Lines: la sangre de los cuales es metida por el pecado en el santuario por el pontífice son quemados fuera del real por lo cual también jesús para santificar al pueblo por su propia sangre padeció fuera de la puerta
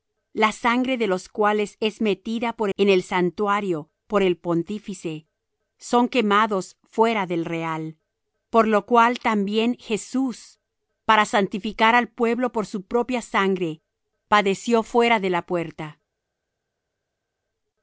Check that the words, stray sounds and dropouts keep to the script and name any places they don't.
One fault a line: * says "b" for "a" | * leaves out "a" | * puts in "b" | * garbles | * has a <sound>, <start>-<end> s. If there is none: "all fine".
* leaves out "el pecado"